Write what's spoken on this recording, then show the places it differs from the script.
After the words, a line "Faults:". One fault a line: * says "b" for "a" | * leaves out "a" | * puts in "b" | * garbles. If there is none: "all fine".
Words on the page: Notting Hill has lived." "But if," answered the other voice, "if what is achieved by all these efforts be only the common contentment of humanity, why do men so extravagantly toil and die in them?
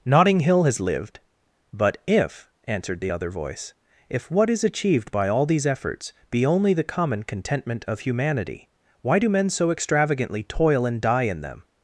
Notting Hill has lived." "But if," answered the other voice, "if what is achieved by all these efforts be only the common contentment of humanity, why do men so extravagantly toil and die in them?
Faults:
all fine